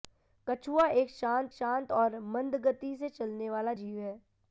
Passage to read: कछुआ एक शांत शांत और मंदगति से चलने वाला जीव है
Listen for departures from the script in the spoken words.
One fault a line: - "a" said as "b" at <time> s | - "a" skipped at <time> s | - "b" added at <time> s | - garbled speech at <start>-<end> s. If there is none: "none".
none